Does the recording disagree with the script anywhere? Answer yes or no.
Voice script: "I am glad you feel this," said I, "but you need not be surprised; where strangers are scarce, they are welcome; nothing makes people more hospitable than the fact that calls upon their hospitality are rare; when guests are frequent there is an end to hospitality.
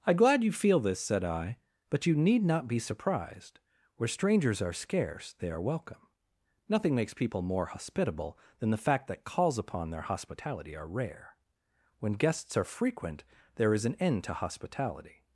yes